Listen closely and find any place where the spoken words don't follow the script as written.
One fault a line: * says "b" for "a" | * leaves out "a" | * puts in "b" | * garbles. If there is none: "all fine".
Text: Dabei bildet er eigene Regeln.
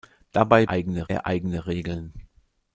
* says "eigene" for "bildet"